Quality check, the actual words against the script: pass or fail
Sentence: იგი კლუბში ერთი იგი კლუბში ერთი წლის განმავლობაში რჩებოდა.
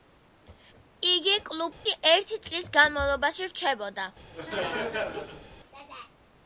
fail